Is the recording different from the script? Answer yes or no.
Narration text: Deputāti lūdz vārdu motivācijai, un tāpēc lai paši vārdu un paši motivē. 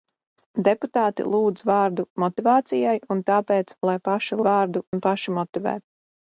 no